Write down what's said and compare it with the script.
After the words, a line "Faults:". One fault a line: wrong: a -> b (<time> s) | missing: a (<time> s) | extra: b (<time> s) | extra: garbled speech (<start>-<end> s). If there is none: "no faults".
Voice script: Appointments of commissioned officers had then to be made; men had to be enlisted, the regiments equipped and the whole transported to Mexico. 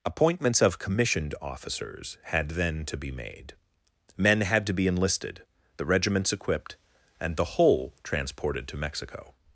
Appointments of commissioned officers had then to be made; men had to be enlisted, the regiments equipped and the whole transported to Mexico.
Faults:
no faults